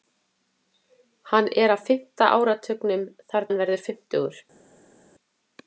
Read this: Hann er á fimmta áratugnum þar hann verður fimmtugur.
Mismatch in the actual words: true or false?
false